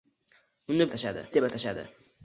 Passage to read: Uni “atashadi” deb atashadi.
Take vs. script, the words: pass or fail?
pass